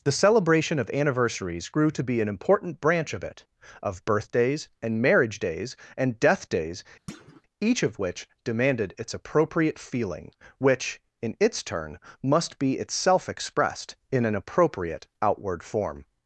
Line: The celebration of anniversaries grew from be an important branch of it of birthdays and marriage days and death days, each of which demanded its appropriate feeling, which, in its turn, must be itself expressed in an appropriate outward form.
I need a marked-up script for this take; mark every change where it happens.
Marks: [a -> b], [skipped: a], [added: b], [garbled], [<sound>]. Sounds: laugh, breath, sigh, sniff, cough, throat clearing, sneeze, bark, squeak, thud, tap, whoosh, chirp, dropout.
The celebration of anniversaries grew [from -> to] be an important branch of it of birthdays and marriage days and death days, [thud] each of which demanded its appropriate feeling, which, in its turn, must be itself expressed in an appropriate outward form.